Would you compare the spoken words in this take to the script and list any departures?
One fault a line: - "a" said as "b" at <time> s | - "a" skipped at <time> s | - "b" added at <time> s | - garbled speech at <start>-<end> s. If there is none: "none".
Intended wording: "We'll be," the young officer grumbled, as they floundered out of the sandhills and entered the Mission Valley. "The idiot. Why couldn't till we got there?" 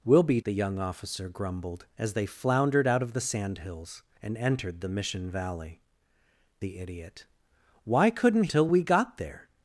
none